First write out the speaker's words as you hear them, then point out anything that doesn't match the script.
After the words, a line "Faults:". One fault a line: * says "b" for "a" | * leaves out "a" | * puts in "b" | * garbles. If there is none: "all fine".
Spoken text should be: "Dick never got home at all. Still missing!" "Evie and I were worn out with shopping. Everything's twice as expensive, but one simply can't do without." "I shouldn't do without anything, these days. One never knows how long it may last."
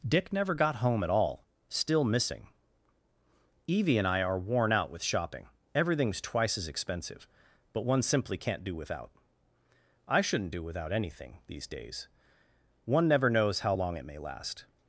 "Dick never got home at all. Still missing!" "Evie and I are worn out with shopping. Everything's twice as expensive, but one simply can't do without." "I shouldn't do without anything, these days. One never knows how long it may last."
Faults:
* says "are" for "were"